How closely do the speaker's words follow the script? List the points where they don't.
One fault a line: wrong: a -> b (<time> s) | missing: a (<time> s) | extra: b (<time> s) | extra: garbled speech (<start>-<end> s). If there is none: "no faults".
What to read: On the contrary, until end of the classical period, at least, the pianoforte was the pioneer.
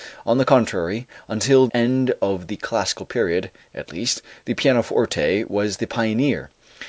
no faults